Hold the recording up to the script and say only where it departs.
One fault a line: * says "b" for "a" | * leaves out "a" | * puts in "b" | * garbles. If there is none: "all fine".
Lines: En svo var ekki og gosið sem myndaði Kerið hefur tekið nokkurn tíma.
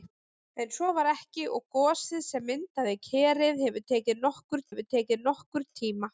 * puts in "hefur tekið nokkurn"